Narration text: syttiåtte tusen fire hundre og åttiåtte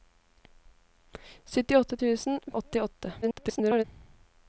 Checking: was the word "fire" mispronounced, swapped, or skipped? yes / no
yes